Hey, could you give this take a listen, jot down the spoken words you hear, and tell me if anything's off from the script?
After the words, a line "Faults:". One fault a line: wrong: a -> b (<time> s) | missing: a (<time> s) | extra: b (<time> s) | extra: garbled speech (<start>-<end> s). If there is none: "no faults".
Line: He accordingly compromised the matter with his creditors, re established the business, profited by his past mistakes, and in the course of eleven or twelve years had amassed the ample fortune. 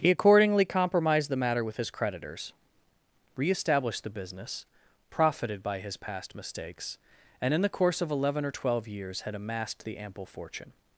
He accordingly compromised the matter with his creditors, re established the business, profited by his past mistakes, and in the course of eleven or twelve years had amassed the ample fortune.
Faults:
no faults